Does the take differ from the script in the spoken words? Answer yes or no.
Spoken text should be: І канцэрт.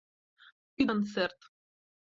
no